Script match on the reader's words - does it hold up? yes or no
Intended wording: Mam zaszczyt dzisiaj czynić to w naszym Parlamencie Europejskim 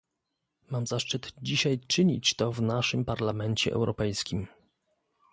yes